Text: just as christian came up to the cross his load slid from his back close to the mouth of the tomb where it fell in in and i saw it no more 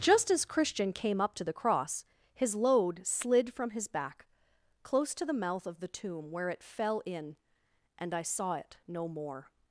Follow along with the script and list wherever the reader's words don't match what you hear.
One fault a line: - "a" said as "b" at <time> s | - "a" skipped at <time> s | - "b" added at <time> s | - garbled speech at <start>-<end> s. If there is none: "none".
- "in" skipped at 7.3 s